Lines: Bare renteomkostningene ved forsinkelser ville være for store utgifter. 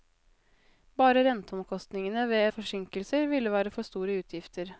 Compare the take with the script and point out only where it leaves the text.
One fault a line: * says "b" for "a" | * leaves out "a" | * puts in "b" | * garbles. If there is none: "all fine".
all fine